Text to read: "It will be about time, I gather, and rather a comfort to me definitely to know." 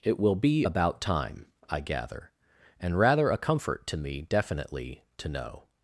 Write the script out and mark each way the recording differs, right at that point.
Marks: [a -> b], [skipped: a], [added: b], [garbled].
"It will be about time, I gather, and rather a comfort to me definitely to know."